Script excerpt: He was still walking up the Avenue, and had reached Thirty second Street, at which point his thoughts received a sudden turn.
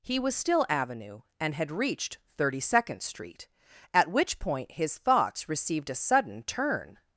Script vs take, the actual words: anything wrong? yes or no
yes